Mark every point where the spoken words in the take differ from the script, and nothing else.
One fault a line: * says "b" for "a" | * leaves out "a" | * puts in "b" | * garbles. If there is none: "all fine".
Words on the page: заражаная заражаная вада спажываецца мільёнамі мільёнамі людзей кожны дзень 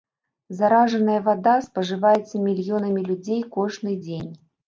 * leaves out "заражаная"
* leaves out "мільёнамі"